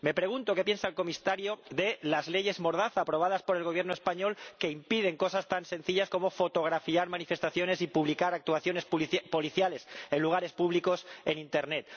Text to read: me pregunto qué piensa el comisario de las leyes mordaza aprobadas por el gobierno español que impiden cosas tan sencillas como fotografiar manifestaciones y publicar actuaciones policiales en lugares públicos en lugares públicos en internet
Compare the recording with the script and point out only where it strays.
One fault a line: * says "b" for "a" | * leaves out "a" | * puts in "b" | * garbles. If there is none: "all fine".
* leaves out "lugares públicos en"